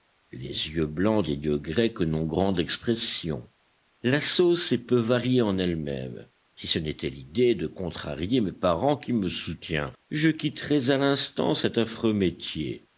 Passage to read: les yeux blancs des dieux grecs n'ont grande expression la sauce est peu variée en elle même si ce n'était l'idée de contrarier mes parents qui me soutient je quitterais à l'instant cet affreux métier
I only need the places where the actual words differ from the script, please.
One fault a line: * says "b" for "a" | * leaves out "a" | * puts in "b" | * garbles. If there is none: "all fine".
all fine